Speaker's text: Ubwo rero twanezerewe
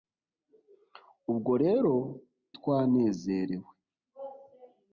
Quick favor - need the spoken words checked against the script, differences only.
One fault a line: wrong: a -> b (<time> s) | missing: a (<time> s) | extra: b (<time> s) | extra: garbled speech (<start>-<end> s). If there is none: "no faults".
no faults